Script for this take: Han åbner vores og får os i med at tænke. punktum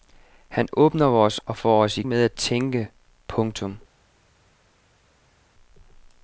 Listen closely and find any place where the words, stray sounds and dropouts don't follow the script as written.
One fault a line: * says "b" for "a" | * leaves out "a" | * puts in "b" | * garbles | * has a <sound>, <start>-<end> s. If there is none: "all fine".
all fine